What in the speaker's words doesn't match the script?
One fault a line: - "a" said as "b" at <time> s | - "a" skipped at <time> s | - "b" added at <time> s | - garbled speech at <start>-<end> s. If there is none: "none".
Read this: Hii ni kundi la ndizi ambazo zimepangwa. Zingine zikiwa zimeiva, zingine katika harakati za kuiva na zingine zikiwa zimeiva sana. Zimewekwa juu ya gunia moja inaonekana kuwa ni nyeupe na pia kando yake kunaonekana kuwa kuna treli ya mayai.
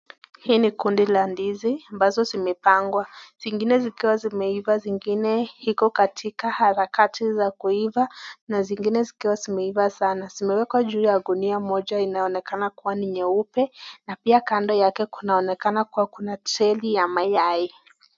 - "iko" added at 5.6 s